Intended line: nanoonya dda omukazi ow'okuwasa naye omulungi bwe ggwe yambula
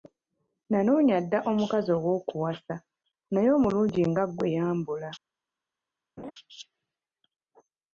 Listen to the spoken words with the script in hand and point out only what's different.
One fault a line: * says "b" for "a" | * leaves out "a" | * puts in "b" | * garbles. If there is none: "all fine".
* says "nga" for "bwe"